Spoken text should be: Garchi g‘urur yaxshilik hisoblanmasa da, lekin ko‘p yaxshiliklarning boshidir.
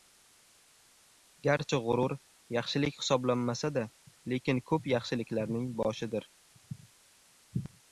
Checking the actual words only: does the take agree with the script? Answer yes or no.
yes